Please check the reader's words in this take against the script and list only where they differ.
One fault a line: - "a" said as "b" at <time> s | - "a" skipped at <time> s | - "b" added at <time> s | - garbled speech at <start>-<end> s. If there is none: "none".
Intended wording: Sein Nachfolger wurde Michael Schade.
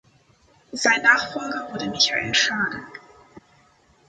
none